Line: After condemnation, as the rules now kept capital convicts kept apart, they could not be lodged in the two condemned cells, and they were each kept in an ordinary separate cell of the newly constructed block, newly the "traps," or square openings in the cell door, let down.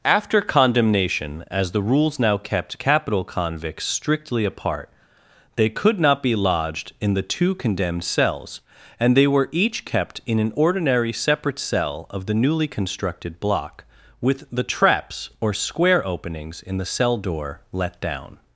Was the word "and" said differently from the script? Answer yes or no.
no